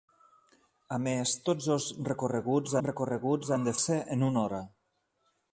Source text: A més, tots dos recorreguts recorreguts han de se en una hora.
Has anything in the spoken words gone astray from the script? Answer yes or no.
no